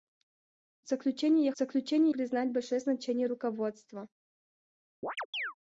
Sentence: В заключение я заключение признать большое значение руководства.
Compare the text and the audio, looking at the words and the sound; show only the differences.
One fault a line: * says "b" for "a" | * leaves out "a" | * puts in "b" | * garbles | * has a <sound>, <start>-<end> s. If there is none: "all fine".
* has a chirp, 5.0-5.5 s